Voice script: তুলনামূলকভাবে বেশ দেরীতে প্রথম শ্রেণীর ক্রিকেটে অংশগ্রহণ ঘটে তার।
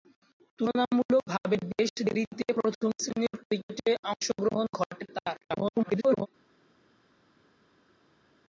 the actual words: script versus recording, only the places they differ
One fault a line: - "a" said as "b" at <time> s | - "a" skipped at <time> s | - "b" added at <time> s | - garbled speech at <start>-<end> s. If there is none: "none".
- garbled speech at 5.4-6.3 s